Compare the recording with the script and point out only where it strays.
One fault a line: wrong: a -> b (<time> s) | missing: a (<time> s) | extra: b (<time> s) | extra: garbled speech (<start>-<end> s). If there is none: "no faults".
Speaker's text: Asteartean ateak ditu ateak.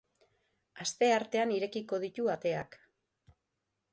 wrong: ateak -> irekiko (1.6 s)